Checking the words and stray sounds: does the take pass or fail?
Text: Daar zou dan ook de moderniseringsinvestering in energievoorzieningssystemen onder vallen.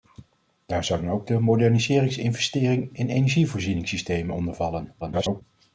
fail